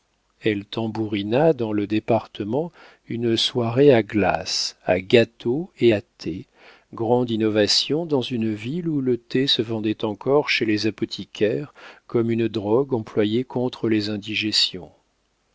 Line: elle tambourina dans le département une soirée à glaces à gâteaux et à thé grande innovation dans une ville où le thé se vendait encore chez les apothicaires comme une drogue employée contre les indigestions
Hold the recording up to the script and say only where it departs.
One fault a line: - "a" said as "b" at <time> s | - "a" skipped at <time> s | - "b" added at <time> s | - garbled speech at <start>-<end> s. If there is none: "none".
none